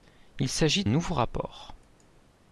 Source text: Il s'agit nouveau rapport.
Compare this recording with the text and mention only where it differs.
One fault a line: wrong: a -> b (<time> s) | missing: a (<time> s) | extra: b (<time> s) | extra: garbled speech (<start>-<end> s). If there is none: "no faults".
no faults